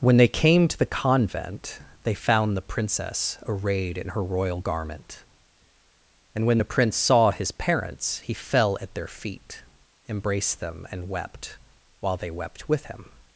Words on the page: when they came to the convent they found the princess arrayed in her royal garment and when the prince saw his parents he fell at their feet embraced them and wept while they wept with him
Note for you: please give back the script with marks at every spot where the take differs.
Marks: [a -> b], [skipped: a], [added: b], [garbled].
when they came to the convent they found the princess arrayed in her royal garment and when the prince saw his parents he fell at their feet embraced them and wept while they wept with him